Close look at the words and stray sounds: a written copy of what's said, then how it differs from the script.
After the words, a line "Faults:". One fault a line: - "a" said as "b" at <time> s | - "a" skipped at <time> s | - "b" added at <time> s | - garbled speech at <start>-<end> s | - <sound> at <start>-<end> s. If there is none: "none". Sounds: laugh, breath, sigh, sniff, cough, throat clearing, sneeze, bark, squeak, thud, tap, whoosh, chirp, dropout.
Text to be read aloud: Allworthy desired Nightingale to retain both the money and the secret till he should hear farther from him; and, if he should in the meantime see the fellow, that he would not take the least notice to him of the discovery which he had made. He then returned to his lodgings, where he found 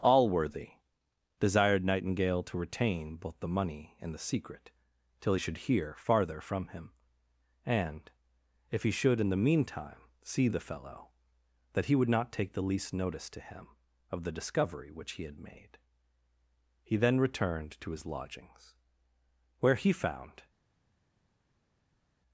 Allworthy desired Nightingale to retain both the money and the secret till he should hear farther from him; and, if he should in the meantime see the fellow, that he would not take the least notice to him of the discovery which he had made. He then returned to his lodgings, where he found
Faults:
none